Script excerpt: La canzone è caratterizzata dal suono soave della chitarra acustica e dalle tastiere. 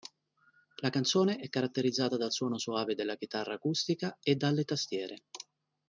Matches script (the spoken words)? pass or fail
pass